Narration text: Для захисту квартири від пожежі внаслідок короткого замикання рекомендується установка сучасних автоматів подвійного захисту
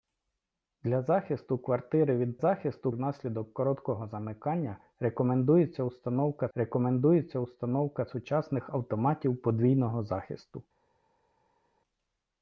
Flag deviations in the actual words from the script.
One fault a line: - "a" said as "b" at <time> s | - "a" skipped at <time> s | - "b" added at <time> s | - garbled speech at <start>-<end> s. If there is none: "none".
- "пожежі" said as "захисту" at 2.4 s
- "рекомендується установка" added at 6.5 s